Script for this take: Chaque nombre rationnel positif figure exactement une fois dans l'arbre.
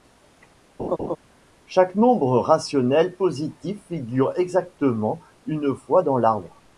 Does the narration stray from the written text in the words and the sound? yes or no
yes